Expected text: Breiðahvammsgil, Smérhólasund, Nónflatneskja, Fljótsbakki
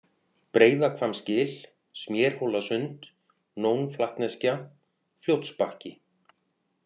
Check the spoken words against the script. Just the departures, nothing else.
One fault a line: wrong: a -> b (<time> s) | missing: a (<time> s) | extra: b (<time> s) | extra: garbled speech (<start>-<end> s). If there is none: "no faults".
no faults